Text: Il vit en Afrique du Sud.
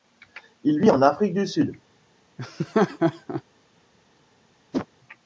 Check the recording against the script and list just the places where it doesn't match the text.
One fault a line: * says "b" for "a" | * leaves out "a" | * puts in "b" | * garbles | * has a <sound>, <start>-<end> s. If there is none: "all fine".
* has a laugh, 2.4-3.4 s
* has a whoosh, 4.7-4.9 s